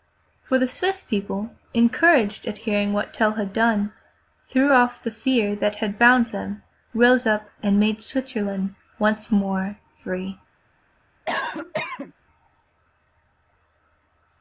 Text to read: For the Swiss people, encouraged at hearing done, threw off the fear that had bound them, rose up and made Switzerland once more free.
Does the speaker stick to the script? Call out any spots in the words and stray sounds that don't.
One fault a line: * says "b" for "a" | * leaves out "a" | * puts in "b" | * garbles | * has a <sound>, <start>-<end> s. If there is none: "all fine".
* puts in "what Tell had"
* has a cough, 11.3-12.1 s